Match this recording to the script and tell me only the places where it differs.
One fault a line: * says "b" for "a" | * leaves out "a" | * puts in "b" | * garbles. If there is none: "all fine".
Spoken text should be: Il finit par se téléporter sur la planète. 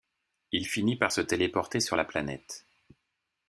all fine